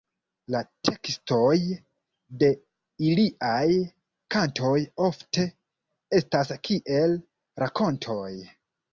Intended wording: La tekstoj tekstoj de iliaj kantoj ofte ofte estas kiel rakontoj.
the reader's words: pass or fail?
fail